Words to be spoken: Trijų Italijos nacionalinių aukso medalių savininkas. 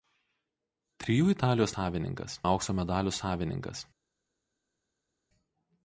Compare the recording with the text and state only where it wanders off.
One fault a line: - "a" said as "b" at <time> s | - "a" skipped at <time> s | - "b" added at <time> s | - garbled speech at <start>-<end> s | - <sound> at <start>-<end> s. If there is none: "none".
- "nacionalinių" said as "savininkas" at 1.7 s